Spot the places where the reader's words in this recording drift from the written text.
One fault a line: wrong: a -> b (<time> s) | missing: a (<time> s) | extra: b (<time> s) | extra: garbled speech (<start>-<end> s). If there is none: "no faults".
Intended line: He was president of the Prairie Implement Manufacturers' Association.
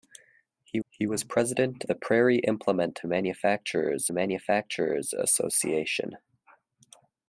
extra: he (0.9 s)
missing: of (1.8 s)
extra: Manufacturers (4.1 s)